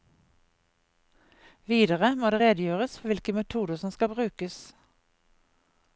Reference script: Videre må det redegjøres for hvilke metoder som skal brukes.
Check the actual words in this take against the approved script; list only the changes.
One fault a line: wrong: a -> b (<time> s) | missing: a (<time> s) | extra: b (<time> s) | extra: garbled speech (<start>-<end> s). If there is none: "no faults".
no faults